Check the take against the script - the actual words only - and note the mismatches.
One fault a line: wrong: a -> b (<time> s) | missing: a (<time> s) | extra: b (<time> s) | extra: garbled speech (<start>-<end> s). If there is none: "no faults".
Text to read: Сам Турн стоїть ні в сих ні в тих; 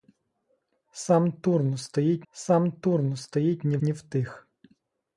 extra: сам Турн стоїть (2.3 s)
missing: сих (3.8 s)